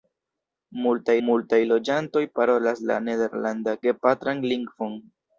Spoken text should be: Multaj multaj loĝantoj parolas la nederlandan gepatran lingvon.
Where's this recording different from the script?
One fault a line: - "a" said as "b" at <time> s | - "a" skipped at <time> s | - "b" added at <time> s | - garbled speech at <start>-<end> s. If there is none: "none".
none